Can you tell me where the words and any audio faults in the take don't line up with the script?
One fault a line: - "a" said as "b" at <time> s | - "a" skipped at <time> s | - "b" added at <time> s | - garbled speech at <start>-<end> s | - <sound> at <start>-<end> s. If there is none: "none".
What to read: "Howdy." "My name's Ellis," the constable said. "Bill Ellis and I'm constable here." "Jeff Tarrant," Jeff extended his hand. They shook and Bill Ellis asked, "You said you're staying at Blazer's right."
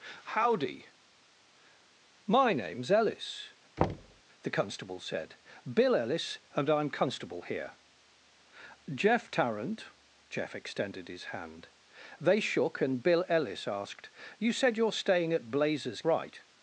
- thud at 3.8-4.2 s